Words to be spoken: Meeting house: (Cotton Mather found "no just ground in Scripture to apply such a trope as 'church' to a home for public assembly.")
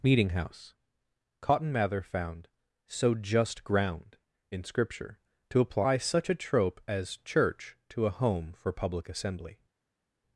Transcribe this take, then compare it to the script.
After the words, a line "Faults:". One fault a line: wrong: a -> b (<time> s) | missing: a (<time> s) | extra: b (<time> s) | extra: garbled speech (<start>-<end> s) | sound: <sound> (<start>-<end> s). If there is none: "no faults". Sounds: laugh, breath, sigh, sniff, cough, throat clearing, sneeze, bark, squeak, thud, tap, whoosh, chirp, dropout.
Meeting house: (Cotton Mather found "so just ground in Scripture to apply such a trope as 'church' to a home for public assembly.")
Faults:
wrong: no -> so (2.9 s)